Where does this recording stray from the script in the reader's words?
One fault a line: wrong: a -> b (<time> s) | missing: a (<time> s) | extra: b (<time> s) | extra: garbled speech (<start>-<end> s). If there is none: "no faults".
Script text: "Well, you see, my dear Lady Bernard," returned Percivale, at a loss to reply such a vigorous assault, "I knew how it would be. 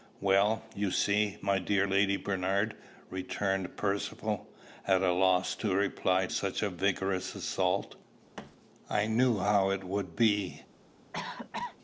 no faults